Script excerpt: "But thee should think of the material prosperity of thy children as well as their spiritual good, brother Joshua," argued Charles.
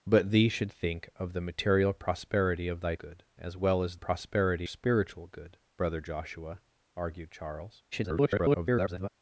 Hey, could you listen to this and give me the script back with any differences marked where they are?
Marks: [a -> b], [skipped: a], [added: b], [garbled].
"But thee should think of the material prosperity of thy [children -> good] as well as [their -> prosperity] spiritual good, brother Joshua," argued Charles. [garbled]